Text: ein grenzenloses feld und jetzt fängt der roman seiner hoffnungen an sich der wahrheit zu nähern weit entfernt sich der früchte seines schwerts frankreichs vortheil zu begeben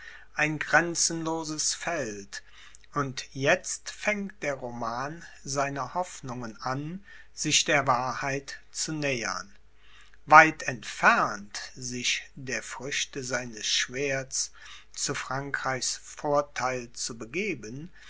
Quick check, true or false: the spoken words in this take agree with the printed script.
false